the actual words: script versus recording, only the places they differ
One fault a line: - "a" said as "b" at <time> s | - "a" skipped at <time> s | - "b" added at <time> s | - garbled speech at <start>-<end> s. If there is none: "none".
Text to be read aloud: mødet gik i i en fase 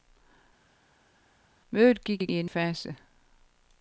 none